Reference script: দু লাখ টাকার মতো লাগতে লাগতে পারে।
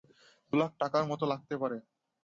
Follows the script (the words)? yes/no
no